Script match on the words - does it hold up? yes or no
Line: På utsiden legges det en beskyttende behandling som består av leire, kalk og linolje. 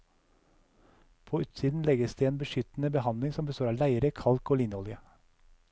yes